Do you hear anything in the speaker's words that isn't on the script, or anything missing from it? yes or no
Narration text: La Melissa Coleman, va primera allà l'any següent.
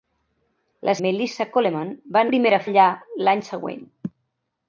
no